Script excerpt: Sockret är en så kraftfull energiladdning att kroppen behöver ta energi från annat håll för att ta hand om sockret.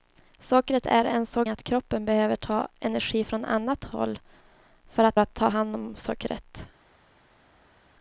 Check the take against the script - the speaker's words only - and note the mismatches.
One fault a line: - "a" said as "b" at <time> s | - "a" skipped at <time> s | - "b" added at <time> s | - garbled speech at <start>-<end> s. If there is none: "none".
- "kraftfull energiladdning" skipped at 1.4 s
- "att" added at 5.2 s